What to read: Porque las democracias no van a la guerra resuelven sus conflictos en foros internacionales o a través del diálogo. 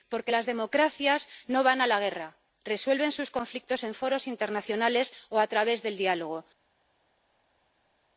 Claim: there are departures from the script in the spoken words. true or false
false